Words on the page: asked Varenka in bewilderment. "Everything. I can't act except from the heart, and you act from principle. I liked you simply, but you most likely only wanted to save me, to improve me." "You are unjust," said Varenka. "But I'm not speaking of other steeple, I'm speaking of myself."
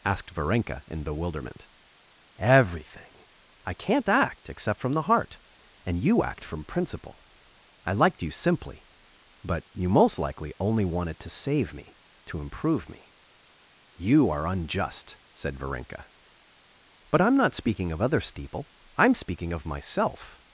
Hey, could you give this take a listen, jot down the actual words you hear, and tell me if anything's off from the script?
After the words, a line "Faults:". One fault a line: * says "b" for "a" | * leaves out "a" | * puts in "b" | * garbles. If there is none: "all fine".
asked Varenka in bewilderment. "Everything. I can't act except from the heart, and you act from principle. I liked you simply, but you most likely only wanted to save me, to improve me." "You are unjust," said Varenka. "But I'm not speaking of other steeple, I'm speaking of myself."
Faults:
all fine